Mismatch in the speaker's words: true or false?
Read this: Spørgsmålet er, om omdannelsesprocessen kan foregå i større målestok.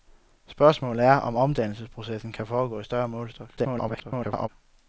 true